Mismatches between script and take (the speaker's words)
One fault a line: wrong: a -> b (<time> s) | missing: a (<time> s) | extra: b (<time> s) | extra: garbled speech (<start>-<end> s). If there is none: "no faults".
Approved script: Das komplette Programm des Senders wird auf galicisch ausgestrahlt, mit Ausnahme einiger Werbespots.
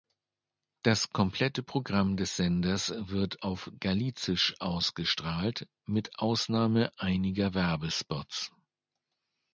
no faults